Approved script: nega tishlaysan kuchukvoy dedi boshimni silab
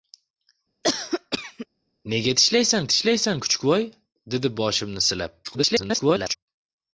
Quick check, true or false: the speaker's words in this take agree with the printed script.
false